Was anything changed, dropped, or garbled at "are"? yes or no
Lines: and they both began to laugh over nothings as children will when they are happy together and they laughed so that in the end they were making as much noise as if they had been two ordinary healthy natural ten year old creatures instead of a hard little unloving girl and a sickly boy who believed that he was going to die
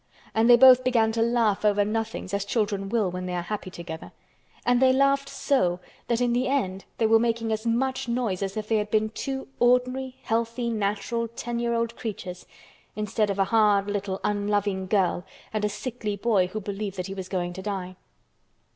no